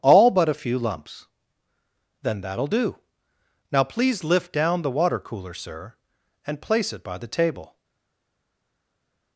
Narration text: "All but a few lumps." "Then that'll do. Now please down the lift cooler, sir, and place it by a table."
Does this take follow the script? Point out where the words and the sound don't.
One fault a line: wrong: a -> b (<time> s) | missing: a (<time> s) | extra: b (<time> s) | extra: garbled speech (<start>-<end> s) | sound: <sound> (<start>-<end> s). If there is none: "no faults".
extra: lift (4.2 s)
wrong: lift -> water (4.9 s)
wrong: a -> the (7.2 s)